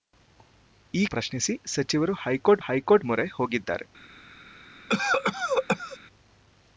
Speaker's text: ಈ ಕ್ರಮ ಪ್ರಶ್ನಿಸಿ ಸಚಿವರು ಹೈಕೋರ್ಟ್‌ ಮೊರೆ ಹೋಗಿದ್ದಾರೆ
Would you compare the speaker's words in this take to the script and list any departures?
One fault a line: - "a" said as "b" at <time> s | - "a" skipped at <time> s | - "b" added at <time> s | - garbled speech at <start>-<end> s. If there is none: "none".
- "ಕ್ರಮ" skipped at 1.1 s
- "ಹೈಕೋರ್ಟ್" added at 2.6 s